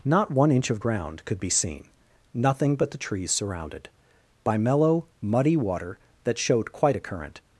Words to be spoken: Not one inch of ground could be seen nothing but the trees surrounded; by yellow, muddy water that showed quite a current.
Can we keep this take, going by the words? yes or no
no